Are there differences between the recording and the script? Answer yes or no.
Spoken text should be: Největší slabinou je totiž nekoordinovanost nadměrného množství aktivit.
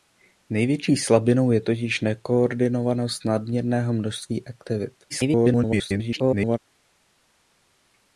yes